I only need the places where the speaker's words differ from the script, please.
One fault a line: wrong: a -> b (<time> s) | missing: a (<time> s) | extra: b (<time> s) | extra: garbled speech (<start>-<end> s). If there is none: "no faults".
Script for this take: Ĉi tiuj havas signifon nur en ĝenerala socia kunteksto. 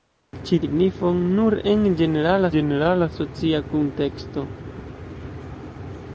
missing: tiuj havas (0.6 s)
extra: ĝenerala (2.6 s)